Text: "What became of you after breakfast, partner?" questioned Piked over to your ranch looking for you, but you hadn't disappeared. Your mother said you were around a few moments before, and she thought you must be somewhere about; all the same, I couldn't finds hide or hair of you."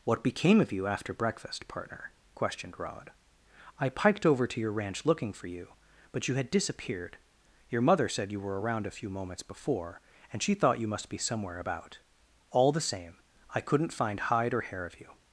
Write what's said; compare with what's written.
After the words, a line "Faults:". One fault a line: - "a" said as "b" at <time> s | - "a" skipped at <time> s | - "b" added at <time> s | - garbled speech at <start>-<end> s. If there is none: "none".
"What became of you after breakfast, partner?" questioned Rod. "I piked over to your ranch looking for you, but you had disappeared. Your mother said you were around a few moments before, and she thought you must be somewhere about; all the same, I couldn't find hide or hair of you."
Faults:
- "Rod I" added at 2.8 s
- "hadn't" said as "had" at 6.3 s
- "finds" said as "find" at 13.9 s